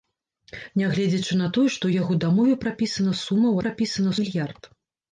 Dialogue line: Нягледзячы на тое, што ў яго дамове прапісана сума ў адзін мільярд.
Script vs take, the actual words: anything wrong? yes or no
yes